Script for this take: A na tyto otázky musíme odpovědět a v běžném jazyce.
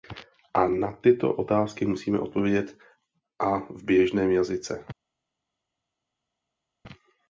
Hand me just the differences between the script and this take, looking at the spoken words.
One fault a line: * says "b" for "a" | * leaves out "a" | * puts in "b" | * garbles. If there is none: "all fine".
all fine